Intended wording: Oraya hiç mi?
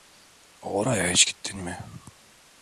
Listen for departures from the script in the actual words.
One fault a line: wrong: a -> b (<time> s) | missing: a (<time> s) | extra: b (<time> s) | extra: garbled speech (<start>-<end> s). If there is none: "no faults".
extra: gittin (1.2 s)